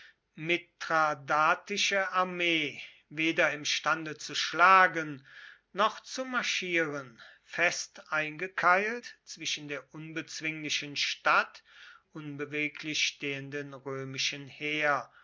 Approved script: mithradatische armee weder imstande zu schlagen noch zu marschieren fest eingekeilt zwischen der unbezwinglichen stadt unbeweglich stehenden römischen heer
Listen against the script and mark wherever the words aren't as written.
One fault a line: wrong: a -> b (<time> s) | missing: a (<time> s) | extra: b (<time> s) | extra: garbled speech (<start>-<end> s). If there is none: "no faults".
no faults